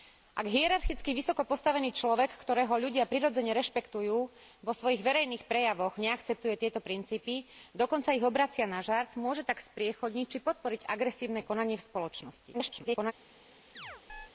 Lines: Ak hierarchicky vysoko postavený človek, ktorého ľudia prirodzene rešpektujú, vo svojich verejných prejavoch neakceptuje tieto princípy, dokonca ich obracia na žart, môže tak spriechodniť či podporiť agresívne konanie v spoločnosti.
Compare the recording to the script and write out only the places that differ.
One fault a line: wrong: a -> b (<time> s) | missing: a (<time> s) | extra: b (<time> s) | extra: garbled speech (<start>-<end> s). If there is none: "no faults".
extra: garbled speech (12.5-13.1 s)